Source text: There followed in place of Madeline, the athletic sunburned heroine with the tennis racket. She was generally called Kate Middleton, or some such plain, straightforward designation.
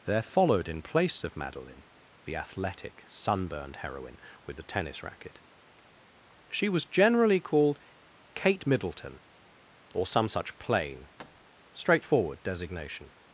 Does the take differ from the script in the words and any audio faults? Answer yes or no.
yes